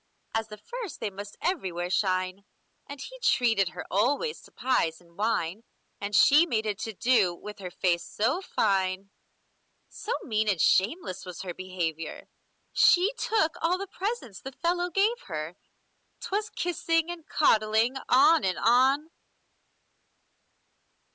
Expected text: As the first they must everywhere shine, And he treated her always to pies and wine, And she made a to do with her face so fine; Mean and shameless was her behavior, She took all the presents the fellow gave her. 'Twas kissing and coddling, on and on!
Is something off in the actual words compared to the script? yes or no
yes